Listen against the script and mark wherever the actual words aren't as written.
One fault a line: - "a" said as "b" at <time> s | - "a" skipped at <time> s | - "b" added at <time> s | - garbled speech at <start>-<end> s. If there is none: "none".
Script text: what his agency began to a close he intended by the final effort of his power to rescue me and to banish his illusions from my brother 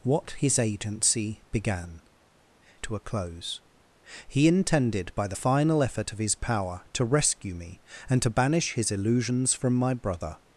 none